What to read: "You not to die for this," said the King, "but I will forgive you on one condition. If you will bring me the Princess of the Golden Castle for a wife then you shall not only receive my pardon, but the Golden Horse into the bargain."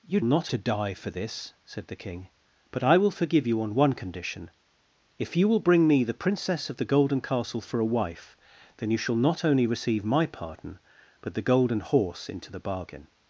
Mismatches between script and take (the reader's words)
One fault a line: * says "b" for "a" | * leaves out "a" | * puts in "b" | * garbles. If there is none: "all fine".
all fine